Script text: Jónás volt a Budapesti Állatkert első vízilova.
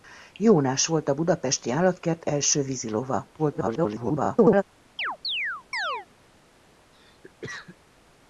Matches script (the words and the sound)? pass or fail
fail